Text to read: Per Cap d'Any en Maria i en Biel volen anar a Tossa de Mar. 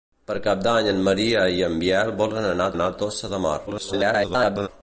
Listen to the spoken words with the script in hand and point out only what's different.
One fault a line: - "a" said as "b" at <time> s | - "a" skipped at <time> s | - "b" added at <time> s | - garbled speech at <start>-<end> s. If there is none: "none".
- "anar" added at 2.8 s
- garbled speech at 3.7-4.7 s